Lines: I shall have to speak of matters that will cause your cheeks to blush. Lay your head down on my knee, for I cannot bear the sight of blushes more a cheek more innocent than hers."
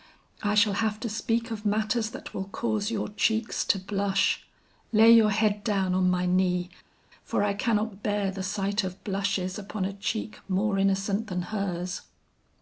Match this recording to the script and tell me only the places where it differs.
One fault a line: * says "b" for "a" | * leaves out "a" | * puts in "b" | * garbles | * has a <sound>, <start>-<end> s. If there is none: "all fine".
* says "upon" for "more"